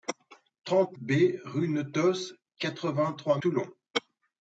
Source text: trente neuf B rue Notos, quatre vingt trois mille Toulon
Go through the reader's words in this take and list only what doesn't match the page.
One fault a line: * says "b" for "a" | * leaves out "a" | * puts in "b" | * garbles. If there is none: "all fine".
* leaves out "neuf"
* leaves out "mille"